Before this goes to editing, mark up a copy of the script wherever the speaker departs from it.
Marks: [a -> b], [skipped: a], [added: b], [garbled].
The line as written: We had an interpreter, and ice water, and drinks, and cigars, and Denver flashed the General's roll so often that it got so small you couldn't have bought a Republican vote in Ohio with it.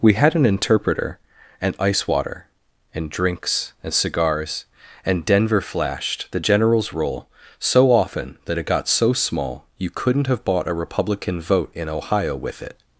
We had an interpreter, and ice water, and drinks, and cigars, and Denver flashed the General's roll so often that it got so small you couldn't have bought a Republican vote in Ohio with it.